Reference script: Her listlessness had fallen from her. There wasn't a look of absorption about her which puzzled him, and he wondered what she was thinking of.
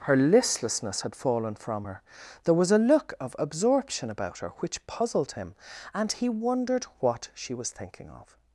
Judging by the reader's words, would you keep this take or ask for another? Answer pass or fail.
fail